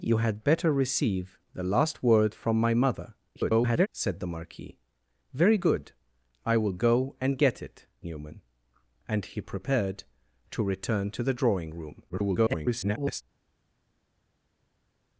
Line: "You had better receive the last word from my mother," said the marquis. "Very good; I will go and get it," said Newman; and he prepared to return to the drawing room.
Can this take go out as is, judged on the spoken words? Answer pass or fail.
fail